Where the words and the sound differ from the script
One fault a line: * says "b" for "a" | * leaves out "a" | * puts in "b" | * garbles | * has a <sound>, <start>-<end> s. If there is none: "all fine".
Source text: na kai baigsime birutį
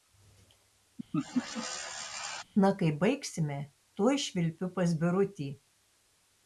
* has a laugh, 1.1-2.4 s
* puts in "tuoj švilpiu pas"